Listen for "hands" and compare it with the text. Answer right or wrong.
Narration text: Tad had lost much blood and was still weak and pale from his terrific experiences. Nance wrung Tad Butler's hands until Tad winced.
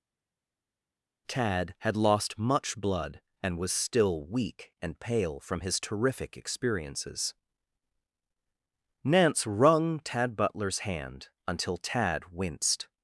wrong